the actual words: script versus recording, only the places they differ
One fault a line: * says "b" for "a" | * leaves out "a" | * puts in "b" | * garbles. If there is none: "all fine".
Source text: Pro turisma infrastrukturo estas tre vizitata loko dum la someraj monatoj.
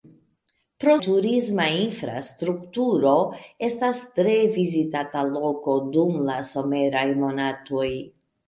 all fine